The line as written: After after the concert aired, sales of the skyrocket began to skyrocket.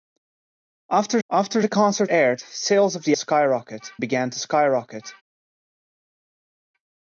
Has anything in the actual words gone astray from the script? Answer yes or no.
no